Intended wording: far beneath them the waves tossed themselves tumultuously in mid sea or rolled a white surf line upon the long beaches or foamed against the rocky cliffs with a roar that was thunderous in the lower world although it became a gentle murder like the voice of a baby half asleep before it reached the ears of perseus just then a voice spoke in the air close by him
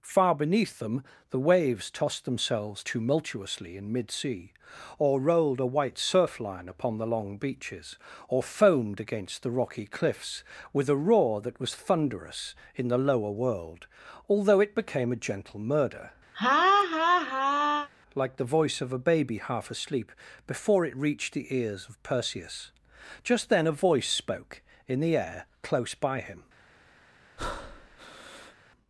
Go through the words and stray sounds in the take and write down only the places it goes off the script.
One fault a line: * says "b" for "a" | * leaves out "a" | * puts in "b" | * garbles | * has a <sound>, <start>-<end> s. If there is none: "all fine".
* has a laugh, 16.3-17.9 s
* has a breath, 27.4-28.5 s